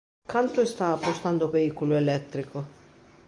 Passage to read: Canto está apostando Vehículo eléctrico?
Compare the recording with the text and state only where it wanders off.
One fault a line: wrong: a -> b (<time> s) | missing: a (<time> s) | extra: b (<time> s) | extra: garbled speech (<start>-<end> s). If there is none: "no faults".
no faults